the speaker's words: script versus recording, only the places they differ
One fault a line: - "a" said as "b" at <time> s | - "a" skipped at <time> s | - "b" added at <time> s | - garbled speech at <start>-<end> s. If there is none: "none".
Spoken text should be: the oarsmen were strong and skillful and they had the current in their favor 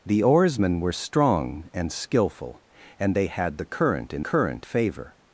- "their" said as "current" at 4.2 s